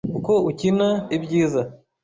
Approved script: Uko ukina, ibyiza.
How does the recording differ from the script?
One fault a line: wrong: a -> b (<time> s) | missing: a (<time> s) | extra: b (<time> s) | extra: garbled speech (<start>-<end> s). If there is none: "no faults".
no faults